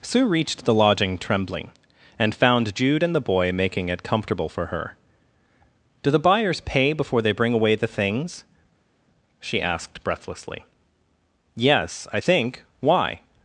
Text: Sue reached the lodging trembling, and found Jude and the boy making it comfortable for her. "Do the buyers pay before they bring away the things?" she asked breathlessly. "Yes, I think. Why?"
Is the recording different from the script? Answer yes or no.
no